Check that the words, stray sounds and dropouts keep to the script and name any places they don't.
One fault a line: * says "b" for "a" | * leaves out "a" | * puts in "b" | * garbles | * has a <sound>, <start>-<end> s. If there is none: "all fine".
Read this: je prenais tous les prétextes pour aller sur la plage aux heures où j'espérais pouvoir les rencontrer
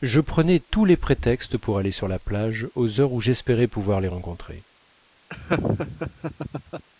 * has a laugh, 5.3-6.9 s